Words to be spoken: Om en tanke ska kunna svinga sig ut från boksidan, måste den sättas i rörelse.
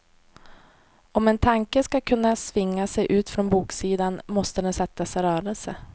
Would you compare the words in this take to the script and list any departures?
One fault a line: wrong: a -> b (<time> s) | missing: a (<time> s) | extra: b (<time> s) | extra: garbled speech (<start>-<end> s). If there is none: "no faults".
no faults